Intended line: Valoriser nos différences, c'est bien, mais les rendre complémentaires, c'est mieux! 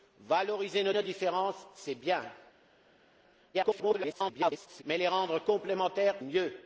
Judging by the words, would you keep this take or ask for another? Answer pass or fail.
fail